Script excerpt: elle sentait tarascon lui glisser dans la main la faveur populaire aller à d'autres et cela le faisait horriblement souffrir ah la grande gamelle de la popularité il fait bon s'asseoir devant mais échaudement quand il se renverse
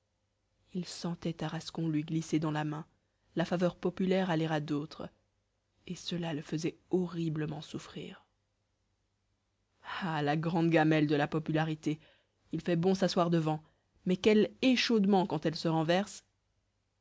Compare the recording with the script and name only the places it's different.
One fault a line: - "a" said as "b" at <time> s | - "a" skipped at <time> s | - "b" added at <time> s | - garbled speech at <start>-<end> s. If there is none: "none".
- "elle" said as "il" at 0.7 s
- "quel" added at 14.1 s
- "il" said as "elle" at 15.4 s